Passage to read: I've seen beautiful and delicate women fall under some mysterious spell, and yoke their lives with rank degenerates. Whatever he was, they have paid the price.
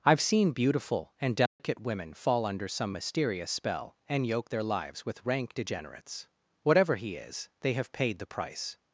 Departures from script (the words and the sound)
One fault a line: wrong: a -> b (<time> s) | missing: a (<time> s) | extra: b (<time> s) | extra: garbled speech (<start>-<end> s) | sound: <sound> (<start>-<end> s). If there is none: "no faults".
sound: dropout (1.5-1.6 s)
wrong: was -> is (7.2 s)